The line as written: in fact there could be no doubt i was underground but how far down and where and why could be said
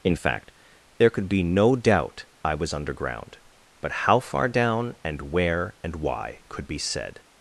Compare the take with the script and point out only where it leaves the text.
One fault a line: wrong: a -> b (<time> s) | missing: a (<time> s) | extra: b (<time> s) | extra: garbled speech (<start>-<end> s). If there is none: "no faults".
no faults